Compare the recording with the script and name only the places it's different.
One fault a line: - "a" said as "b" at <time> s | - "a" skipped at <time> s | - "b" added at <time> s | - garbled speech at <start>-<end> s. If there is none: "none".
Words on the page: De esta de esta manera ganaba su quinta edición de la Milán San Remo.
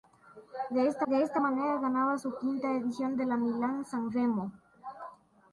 none